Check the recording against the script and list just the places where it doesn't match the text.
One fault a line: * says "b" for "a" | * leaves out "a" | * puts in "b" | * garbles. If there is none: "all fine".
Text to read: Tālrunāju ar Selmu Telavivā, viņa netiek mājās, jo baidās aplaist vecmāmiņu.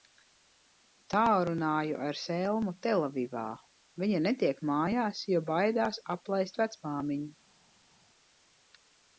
all fine